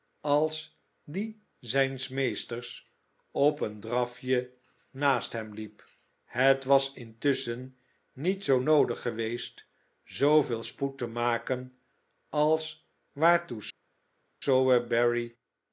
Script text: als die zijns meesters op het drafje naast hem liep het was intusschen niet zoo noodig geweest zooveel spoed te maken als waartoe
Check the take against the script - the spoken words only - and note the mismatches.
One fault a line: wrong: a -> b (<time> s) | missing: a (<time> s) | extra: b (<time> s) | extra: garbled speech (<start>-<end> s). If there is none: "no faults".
wrong: het -> een (3.6 s)